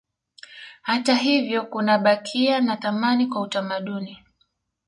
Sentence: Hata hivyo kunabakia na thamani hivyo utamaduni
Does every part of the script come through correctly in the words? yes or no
no